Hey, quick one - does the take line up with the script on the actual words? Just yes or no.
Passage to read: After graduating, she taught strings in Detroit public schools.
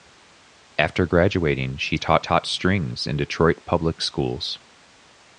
no